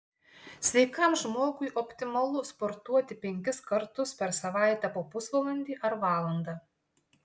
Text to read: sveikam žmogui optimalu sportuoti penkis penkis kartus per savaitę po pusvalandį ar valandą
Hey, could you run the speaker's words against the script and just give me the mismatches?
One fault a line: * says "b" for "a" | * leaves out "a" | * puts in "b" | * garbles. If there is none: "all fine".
* leaves out "penkis"